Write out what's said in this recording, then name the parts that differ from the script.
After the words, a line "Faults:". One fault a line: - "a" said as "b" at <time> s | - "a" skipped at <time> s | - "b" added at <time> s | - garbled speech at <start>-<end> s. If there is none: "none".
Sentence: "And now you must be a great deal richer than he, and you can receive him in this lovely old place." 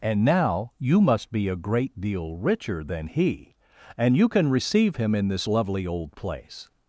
"And now you must be a great deal richer than he, and you can receive him in this lovely old place."
Faults:
none